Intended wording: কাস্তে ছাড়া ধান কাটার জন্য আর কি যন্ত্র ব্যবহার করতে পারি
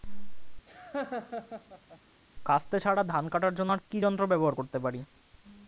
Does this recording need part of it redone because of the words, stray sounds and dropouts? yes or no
yes